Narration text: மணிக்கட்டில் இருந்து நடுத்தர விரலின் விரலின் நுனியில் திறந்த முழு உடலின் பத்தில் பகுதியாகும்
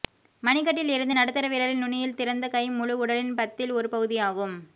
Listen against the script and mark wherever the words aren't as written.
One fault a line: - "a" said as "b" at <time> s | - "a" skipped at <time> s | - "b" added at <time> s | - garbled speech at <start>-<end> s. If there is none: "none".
- "விரலின்" skipped at 1.8 s
- "கை" added at 2.5 s
- "ஒரு" added at 3.7 s